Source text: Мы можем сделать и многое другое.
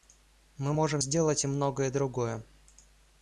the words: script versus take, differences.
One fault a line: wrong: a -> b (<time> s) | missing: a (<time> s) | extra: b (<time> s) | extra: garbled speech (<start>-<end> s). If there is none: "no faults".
no faults